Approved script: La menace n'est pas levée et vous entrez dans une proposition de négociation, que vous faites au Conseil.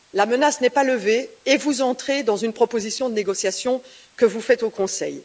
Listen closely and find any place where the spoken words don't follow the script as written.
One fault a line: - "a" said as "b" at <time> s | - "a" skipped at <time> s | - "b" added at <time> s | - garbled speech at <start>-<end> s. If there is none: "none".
none